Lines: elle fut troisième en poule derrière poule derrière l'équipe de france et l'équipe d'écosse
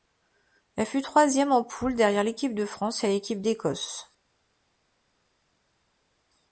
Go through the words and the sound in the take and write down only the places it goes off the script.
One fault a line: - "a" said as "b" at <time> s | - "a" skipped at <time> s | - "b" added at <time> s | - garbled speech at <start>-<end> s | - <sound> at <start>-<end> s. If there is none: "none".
- "poule derrière" skipped at 2.2 s